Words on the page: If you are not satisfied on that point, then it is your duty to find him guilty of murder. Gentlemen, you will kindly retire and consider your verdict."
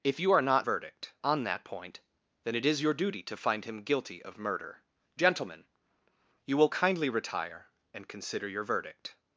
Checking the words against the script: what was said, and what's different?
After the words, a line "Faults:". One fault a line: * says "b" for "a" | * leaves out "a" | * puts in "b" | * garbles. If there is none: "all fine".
If you are not verdict on that point, then it is your duty to find him guilty of murder. Gentlemen, you will kindly retire and consider your verdict."
Faults:
* says "verdict" for "satisfied"